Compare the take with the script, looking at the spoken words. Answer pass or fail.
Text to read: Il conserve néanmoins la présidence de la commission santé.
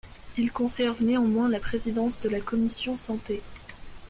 pass